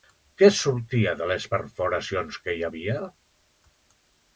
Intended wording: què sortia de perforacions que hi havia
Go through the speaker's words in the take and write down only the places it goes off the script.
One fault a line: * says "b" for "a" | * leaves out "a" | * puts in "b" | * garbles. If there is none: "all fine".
* puts in "les"